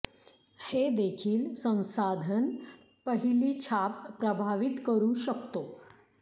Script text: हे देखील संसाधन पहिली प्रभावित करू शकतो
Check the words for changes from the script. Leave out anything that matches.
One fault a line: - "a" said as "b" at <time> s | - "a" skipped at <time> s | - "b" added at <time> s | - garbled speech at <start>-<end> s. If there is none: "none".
- "छाप" added at 3.6 s